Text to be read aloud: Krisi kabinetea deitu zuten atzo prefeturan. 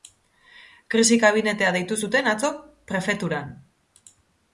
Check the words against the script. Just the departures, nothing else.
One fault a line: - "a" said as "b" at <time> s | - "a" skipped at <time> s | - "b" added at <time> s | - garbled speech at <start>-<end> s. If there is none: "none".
none